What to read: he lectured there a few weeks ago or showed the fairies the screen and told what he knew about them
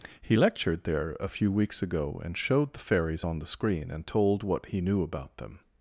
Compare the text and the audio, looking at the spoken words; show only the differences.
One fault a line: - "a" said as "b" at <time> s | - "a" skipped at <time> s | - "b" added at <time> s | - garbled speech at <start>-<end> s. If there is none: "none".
- "or" said as "and" at 2.2 s
- "on" added at 3.2 s